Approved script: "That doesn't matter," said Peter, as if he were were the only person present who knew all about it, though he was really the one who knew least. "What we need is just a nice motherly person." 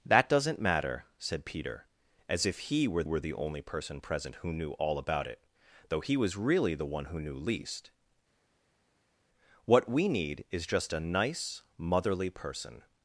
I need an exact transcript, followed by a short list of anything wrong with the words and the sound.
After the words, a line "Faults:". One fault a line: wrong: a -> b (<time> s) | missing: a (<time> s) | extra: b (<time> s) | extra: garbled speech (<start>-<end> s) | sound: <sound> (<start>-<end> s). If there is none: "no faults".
"That doesn't matter," said Peter, as if he were were the only person present who knew all about it, though he was really the one who knew least. "What we need is just a nice motherly person."
Faults:
no faults